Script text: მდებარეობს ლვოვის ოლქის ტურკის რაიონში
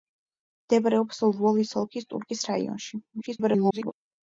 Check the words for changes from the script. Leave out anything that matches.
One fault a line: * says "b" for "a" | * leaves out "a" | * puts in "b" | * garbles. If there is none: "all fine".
* garbles